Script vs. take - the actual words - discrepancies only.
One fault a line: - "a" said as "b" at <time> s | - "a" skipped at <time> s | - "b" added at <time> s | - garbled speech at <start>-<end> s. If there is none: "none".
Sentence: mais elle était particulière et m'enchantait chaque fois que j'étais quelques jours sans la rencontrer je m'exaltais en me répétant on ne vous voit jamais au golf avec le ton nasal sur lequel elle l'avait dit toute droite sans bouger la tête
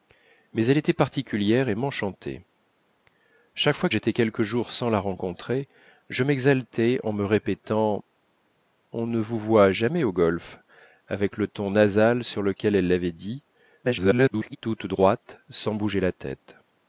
- "que" skipped at 3.9 s
- garbled speech at 13.8-14.6 s